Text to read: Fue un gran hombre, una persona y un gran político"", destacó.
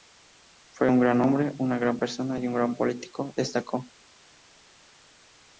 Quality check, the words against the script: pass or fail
fail